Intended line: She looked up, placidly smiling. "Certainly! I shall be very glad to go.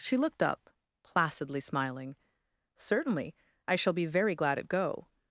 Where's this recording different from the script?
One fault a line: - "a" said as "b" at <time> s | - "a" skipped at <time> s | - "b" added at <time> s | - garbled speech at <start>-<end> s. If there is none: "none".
- "to" said as "at" at 4.6 s